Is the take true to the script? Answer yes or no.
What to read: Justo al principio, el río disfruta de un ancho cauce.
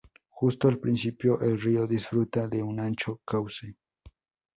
yes